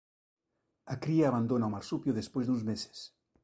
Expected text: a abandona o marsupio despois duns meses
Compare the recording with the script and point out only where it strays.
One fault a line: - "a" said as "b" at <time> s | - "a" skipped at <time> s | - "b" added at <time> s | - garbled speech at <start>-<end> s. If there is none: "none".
- "cría" added at 1.0 s